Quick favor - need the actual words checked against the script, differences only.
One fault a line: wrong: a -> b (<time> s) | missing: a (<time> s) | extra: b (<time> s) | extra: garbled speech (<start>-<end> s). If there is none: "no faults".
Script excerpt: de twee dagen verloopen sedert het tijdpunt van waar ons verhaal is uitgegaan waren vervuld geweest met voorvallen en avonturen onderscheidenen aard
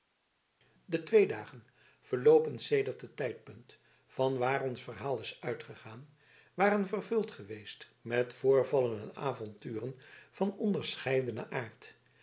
extra: van (10.3 s)